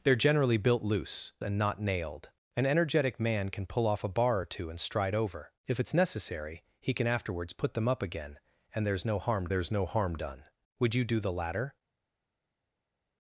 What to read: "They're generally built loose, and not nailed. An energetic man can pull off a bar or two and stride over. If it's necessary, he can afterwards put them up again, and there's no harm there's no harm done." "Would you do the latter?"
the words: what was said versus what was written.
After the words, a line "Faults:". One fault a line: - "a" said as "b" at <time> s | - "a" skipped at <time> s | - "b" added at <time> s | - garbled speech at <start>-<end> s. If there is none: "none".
"They're generally built loose, and not nailed. An energetic man can pull off a bar or two and stride over. If it's necessary, he can afterwards put them up again, and there's no harm there's no harm done." "Would you do the latter?"
Faults:
none